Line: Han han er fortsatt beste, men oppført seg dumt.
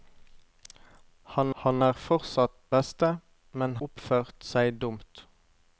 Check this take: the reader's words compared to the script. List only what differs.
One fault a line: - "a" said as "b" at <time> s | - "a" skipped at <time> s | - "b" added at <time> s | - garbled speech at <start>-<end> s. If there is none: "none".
none